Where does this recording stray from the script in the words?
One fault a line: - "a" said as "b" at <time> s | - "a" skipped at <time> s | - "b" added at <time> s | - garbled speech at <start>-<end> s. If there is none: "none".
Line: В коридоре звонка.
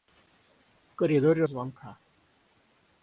none